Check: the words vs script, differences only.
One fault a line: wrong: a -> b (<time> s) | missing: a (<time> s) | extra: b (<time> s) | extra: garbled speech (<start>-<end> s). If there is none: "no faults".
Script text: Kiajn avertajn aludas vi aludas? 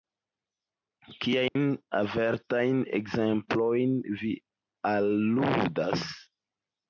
wrong: aludas -> ekzemplojn (3.0 s)